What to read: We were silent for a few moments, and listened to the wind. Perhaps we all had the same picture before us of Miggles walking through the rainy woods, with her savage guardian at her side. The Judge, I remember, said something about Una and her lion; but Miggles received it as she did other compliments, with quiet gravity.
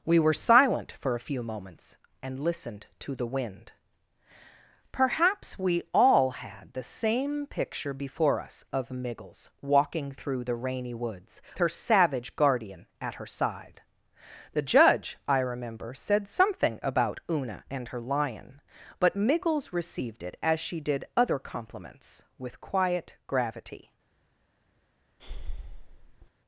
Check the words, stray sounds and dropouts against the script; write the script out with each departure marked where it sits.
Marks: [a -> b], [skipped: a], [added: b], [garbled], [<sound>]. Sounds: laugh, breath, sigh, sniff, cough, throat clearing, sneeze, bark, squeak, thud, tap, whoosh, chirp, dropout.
We were silent for a few moments, and listened to the wind. Perhaps we all had the same picture before us of Miggles walking through the rainy woods, [skipped: with] her savage guardian at her side. The Judge, I remember, said something about Una and her lion; but Miggles received it as she did other compliments, with quiet gravity. [breath]